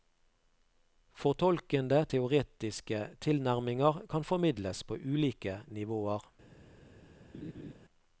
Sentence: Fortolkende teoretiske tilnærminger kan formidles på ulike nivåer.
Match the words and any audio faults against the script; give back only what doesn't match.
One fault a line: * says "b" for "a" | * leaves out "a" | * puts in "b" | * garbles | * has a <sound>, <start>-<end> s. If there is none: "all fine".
* has a laugh, 7.3-7.7 s